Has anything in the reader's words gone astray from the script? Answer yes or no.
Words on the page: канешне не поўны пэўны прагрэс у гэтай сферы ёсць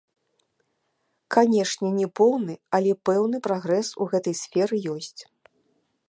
yes